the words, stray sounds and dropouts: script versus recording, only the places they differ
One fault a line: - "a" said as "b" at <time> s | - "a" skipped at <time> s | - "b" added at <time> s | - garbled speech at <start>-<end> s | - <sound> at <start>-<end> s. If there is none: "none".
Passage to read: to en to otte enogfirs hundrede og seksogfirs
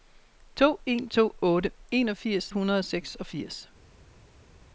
none